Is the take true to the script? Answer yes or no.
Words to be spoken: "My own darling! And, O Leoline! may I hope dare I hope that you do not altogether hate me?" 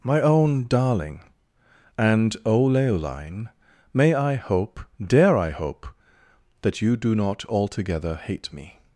yes